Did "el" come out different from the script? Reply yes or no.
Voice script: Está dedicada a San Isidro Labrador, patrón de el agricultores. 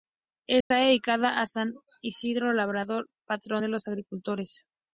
yes